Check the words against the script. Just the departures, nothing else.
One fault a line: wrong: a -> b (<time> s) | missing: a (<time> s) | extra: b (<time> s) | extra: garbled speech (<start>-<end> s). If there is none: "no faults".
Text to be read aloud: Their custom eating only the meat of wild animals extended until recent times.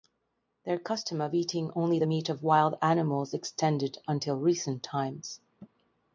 extra: of (1.2 s)